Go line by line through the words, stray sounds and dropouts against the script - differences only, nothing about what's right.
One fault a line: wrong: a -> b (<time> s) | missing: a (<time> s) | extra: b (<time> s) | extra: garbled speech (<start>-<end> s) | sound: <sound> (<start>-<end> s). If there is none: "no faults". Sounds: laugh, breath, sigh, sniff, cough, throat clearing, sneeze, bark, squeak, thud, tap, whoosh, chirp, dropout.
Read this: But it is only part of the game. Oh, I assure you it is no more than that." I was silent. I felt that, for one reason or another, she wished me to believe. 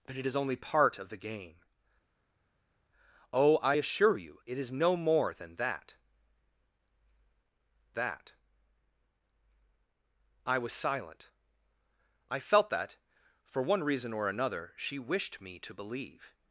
extra: that (7.9 s)